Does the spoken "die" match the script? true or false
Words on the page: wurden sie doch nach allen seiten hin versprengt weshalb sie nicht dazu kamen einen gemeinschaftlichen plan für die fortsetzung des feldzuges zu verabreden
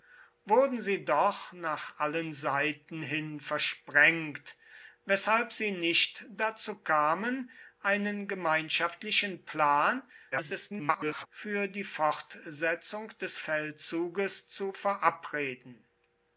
true